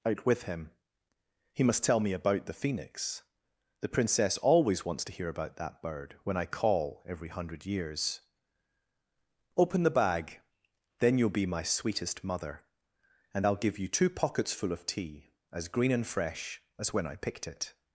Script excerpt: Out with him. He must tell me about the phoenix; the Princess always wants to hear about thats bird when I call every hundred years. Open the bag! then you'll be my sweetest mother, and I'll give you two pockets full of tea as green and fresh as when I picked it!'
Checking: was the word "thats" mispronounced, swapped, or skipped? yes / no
yes